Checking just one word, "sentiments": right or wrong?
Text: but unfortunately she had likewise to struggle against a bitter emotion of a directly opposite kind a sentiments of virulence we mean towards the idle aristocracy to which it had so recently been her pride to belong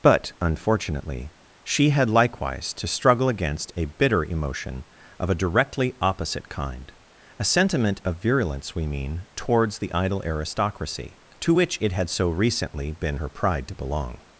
wrong